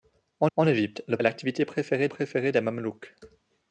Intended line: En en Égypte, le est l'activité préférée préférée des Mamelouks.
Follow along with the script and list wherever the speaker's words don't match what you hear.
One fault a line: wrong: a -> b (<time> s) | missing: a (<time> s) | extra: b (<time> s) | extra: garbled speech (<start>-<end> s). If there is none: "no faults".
no faults